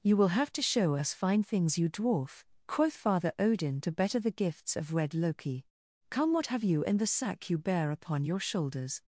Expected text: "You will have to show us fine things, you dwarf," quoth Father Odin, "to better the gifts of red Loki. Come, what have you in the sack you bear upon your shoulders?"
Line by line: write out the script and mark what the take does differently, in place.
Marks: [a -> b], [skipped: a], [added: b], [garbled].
"You will have to show us fine things, you dwarf," quoth Father Odin, "to better the gifts of red Loki. Come, what have you in the sack you bear upon your shoulders?"